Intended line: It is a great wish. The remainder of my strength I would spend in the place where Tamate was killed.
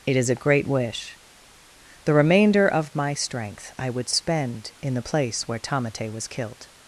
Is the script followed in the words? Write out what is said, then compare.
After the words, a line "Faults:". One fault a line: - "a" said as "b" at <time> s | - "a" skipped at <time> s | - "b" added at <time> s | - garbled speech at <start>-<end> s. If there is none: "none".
It is a great wish. The remainder of my strength I would spend in the place where Tamate was killed.
Faults:
none